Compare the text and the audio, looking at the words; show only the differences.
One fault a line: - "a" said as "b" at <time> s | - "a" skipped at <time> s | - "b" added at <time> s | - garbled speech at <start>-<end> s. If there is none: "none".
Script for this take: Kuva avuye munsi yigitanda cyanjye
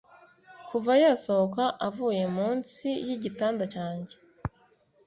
- "yasohoka" added at 1.0 s